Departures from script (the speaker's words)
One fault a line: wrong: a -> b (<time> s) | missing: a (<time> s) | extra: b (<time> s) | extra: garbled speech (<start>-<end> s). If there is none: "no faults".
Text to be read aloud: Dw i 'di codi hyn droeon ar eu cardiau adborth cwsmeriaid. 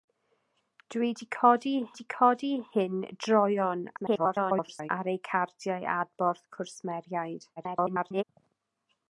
extra: di codi (2.0 s)
extra: garbled speech (4.0-4.9 s)
extra: garbled speech (7.6-8.2 s)